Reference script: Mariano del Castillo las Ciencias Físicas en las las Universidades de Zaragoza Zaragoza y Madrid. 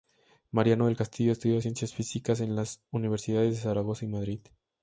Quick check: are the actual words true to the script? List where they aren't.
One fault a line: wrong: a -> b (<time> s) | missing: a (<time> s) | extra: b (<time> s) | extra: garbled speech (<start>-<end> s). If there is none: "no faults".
wrong: las -> estudió (1.3 s)
missing: las (2.8 s)
missing: Zaragoza (4.0 s)